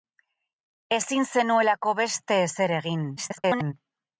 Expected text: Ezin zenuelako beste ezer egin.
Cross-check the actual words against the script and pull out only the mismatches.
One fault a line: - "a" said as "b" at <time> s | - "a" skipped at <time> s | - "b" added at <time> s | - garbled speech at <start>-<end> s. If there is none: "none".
- garbled speech at 3.2-3.7 s